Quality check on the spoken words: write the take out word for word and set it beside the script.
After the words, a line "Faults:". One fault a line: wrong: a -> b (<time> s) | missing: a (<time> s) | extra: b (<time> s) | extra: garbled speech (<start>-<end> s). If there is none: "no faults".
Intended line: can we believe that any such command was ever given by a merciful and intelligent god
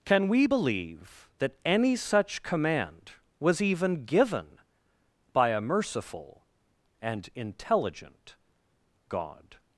can we believe that any such command was even given by a merciful and intelligent god
Faults:
wrong: ever -> even (3.6 s)